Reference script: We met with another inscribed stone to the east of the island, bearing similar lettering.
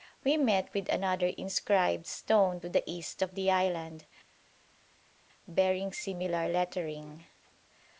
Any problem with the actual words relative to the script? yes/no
no